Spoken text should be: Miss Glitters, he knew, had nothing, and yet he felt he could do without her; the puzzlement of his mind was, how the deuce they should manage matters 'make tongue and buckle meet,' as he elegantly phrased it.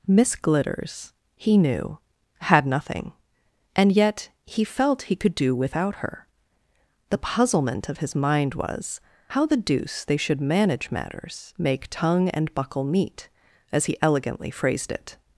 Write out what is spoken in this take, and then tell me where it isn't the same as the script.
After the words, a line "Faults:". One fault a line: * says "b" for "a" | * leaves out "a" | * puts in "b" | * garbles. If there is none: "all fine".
Miss Glitters, he knew, had nothing, and yet he felt he could do without her; the puzzlement of his mind was, how the deuce they should manage matters 'make tongue and buckle meet,' as he elegantly phrased it.
Faults:
all fine